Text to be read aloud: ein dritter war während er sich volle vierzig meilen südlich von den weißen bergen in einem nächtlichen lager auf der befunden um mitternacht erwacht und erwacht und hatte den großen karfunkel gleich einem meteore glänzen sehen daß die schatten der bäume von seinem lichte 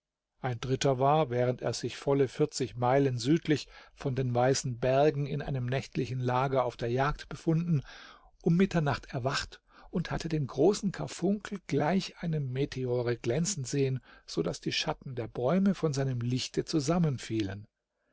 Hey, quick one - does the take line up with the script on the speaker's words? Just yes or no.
no